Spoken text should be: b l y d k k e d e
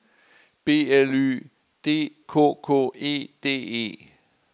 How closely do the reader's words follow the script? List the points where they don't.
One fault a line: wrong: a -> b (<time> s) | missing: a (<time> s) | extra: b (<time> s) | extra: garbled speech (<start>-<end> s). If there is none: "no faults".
no faults